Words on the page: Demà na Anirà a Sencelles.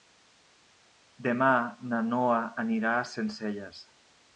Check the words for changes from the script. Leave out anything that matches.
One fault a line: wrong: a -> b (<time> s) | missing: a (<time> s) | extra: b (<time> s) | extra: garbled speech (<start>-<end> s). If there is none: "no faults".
extra: Noa (2.1 s)